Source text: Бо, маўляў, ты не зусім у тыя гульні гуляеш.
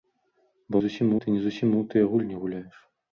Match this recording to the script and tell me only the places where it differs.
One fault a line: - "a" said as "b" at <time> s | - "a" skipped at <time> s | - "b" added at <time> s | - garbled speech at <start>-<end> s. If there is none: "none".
- "маўляў" said as "зусім" at 0.8 s